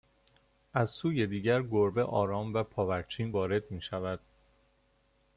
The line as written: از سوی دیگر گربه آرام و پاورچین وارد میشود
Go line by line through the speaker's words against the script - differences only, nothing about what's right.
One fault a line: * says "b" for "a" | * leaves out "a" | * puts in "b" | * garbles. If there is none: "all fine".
all fine